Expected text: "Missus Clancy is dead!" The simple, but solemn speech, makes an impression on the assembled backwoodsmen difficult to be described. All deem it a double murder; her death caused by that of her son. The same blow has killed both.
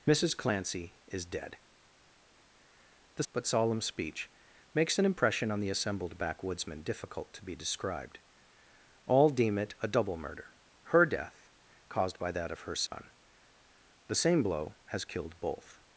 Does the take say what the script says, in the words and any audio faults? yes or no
no